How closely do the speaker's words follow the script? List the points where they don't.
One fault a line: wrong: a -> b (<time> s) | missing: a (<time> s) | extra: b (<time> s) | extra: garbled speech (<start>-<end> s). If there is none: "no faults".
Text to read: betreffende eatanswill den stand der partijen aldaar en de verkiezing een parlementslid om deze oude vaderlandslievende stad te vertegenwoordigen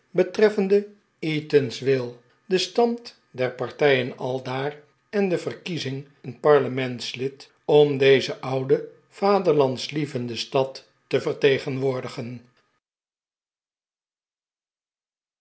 no faults